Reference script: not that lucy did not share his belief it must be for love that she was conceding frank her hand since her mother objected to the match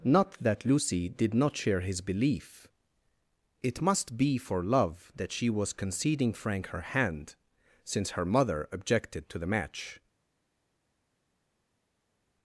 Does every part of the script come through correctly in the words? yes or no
yes